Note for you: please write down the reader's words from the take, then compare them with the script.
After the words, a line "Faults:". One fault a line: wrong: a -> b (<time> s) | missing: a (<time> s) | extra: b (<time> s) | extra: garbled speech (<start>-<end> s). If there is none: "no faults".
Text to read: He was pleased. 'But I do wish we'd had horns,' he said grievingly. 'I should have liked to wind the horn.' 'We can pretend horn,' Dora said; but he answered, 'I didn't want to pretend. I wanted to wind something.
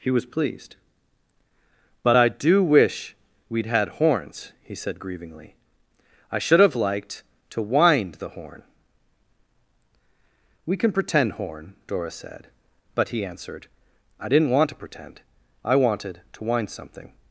He was pleased. 'But I do wish we'd had horns,' he said grievingly. 'I should have liked to wind the horn.' 'We can pretend horn,' Dora said; but he answered, 'I didn't want to pretend. I wanted to wind something.
Faults:
no faults